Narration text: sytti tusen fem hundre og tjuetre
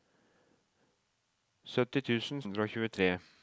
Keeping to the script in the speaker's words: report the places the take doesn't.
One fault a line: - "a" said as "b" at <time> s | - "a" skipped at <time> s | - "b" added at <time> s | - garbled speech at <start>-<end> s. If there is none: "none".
- "fem" skipped at 2.4 s